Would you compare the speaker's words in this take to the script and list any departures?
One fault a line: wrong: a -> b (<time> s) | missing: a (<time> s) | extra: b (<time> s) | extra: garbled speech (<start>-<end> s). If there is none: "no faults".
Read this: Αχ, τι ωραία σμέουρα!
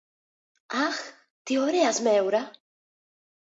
no faults